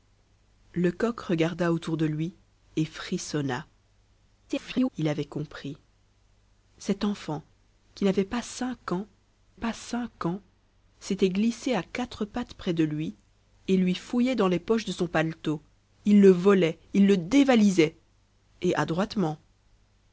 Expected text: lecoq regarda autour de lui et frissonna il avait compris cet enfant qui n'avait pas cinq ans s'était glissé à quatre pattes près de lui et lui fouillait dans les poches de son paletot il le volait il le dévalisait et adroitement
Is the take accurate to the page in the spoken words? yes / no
no